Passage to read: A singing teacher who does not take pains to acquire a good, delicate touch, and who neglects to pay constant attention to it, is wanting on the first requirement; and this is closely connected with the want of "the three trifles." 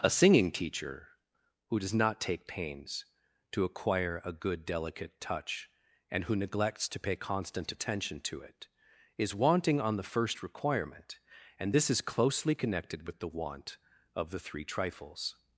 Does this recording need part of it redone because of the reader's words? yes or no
no